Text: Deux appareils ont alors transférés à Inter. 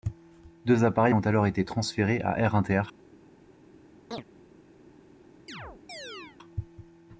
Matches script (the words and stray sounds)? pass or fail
fail